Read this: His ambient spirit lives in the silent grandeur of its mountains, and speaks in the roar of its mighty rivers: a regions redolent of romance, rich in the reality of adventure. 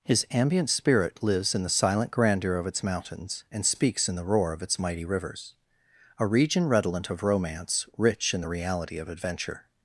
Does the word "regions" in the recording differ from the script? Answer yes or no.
yes